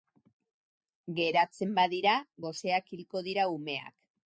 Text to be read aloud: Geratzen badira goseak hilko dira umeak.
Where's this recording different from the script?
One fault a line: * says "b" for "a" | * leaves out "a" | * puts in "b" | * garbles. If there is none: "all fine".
all fine